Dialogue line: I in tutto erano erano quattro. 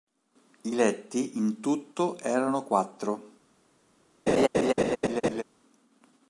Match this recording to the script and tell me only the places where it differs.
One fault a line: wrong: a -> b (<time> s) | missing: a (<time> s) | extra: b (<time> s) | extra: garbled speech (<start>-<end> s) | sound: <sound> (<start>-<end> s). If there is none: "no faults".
extra: letti (0.7 s)
missing: erano (2.6 s)
sound: laugh (4.3-5.4 s)